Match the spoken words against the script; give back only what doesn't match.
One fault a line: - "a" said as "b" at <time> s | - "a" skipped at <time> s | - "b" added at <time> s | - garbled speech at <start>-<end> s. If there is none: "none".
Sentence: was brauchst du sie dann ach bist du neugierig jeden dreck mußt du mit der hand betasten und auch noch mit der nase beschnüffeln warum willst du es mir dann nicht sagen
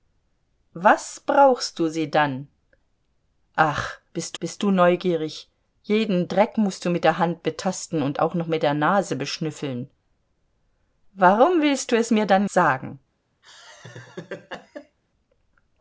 - "bist" added at 4.4 s
- "nicht" skipped at 12.5 s